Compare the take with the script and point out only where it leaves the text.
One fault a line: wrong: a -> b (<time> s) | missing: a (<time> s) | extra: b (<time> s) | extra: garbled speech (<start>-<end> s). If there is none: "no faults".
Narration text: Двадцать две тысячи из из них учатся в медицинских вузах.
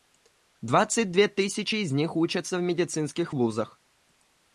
missing: из (1.9 s)